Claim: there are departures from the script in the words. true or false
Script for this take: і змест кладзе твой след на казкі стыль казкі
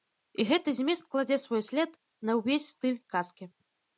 true